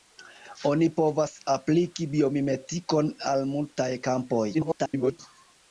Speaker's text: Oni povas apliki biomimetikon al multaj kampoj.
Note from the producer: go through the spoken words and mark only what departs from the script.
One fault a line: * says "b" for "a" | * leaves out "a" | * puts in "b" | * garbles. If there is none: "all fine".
* garbles